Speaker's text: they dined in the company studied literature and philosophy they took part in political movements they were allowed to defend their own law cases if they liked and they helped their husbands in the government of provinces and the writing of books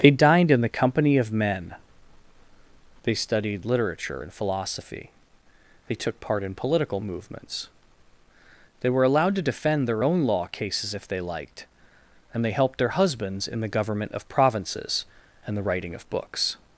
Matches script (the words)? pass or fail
fail